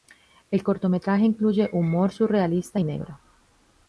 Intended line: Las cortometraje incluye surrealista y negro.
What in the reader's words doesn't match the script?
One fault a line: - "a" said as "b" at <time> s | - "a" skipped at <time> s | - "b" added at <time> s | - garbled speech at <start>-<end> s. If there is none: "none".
- "Las" said as "El" at 0.5 s
- "humor" added at 1.7 s